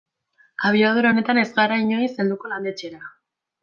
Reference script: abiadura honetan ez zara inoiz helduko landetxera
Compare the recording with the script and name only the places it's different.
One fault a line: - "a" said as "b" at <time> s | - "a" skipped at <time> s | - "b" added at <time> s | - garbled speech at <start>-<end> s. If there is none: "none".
- "zara" said as "gara" at 1.6 s